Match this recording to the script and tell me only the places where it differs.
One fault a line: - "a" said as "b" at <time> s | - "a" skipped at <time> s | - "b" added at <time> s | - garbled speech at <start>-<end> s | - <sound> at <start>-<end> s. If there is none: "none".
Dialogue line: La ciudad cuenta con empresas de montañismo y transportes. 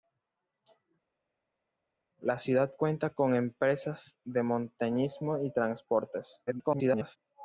- garbled speech at 6.5-7.2 s